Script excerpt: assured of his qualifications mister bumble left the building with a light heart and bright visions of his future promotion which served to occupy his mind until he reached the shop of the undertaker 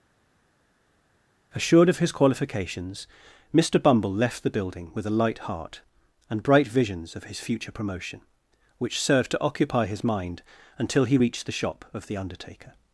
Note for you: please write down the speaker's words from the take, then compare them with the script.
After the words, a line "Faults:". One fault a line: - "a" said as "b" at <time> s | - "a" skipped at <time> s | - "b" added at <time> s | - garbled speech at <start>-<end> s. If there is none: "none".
assured of his qualifications mister bumble left the building with a light heart and bright visions of his future promotion which served to occupy his mind until he reached the shop of the undertaker
Faults:
none